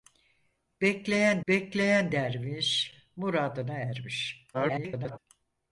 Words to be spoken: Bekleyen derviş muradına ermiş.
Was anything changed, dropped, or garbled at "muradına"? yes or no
no